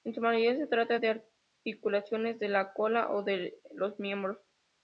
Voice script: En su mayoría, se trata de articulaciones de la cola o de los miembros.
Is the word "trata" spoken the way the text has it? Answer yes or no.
yes